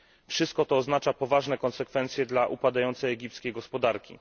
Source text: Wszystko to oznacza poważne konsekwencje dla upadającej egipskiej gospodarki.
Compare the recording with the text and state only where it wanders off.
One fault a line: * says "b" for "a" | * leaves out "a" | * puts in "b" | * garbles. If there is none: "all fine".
all fine